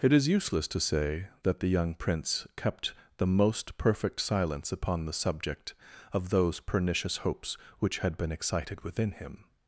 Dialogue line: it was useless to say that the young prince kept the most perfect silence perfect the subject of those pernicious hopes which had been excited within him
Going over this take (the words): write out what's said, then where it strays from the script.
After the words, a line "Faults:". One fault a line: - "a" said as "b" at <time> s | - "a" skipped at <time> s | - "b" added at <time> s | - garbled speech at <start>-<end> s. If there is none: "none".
it is useless to say that the young prince kept the most perfect silence upon the subject of those pernicious hopes which had been excited within him
Faults:
- "was" said as "is" at 0.1 s
- "perfect" said as "upon" at 4.7 s